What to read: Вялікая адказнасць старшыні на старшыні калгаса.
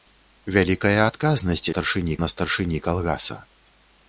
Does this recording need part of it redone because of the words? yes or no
no